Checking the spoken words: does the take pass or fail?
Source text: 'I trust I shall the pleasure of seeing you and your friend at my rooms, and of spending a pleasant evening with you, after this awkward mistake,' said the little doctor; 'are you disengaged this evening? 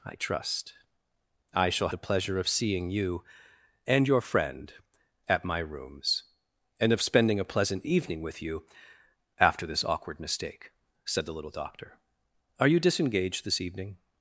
pass